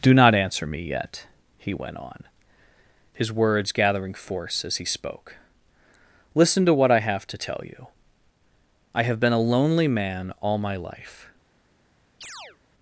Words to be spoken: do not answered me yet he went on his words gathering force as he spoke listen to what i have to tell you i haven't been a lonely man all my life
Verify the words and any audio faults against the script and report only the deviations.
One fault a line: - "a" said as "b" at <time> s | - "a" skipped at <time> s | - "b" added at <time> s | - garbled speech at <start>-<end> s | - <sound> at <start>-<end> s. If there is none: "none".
- "answered" said as "answer" at 0.3 s
- "haven't" said as "have" at 9.0 s
- chirp at 12.2-12.6 s